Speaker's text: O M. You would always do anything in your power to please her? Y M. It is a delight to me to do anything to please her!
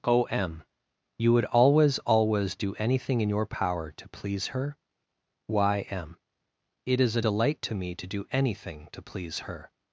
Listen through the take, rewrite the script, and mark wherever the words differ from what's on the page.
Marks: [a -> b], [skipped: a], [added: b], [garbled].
O M. You would always [added: always] do anything in your power to please her? Y M. It is a delight to me to do anything to please her!